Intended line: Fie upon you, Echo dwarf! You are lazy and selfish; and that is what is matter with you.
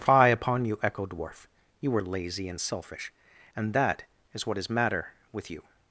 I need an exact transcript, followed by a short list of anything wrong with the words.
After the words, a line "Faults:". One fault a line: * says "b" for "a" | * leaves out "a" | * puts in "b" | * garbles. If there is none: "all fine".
Fie upon you, Echo dwarf! You are lazy and selfish; and that is what is matter with you.
Faults:
all fine